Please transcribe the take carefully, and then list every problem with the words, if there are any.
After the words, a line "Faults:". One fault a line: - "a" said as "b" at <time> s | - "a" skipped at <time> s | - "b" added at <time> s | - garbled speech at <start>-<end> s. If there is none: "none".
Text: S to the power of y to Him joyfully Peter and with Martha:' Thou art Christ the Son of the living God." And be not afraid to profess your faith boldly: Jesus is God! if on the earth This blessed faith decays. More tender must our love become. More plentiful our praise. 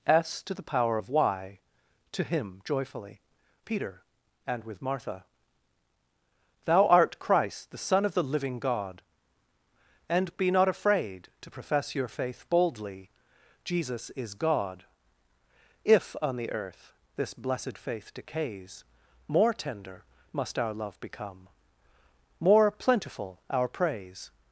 S to the power of y to Him joyfully Peter and with Martha:' Thou art Christ the Son of the living God." And be not afraid to profess your faith boldly: Jesus is God! if on the earth This blessed faith decays. More tender must our love become. More plentiful our praise.
Faults:
none